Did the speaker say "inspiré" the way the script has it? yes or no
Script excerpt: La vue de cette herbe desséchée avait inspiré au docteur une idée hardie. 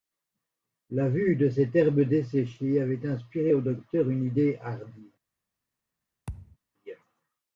yes